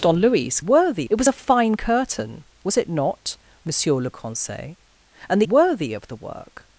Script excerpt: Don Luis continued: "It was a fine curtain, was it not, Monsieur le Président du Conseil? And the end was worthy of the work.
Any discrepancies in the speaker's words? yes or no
yes